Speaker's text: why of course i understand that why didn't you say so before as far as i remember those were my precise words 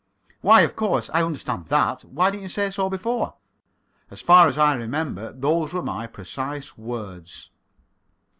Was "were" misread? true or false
false